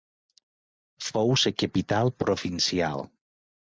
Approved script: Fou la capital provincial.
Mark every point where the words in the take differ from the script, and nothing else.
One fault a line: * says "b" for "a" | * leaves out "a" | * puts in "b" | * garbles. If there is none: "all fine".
all fine